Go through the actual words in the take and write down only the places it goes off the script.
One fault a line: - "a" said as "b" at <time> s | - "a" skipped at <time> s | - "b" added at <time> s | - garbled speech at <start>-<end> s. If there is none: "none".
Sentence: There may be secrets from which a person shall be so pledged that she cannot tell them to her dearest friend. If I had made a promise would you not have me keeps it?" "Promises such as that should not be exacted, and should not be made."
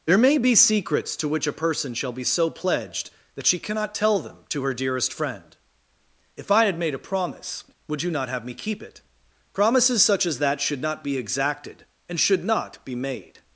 - "from" said as "to" at 1.2 s
- "keeps" said as "keep" at 8.6 s